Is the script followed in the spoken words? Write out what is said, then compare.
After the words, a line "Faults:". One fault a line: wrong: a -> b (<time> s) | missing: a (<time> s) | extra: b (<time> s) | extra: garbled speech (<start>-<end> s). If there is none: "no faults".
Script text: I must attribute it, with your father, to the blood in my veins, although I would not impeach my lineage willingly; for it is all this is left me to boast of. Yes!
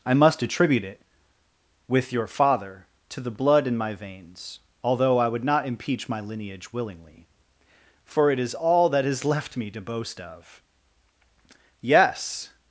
I must attribute it, with your father, to the blood in my veins, although I would not impeach my lineage willingly; for it is all that is left me to boast of. Yes!
Faults:
wrong: this -> that (8.9 s)